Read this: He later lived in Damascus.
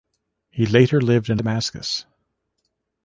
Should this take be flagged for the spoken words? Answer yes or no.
no